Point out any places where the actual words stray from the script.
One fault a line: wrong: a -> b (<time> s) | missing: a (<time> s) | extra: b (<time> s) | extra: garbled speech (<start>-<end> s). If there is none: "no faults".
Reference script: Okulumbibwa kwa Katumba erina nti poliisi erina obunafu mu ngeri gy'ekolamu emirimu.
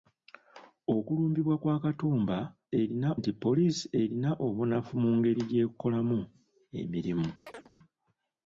no faults